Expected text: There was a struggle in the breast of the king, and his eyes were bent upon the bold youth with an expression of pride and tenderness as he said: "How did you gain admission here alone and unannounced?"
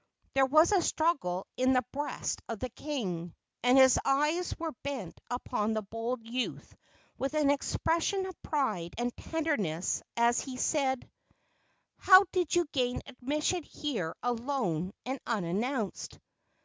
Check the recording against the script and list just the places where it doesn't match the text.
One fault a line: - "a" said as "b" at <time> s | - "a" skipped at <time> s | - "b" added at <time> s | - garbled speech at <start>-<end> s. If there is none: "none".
none